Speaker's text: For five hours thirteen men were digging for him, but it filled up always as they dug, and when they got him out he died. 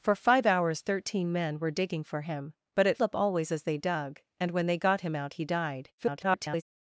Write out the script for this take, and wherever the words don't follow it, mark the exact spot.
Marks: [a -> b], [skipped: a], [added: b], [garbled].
For five hours thirteen men were digging for him, but it [skipped: filled] up always as they dug, and when they got him out he died. [garbled]